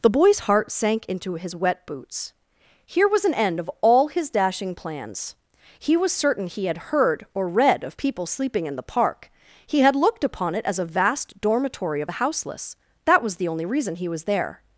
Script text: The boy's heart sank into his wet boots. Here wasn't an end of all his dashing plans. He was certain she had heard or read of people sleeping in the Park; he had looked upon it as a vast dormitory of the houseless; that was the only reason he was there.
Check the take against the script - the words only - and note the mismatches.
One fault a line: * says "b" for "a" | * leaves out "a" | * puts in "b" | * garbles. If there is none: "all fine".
* says "was" for "wasn't"
* says "he" for "she"